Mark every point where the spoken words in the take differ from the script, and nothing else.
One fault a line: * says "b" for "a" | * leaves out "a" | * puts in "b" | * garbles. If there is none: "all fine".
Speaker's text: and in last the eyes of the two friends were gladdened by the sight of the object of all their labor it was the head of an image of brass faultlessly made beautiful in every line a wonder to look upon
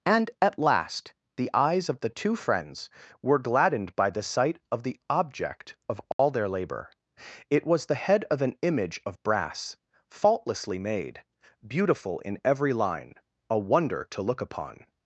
* says "at" for "in"